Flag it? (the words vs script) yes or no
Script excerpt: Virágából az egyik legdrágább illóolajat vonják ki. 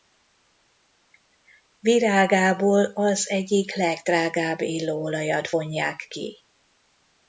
no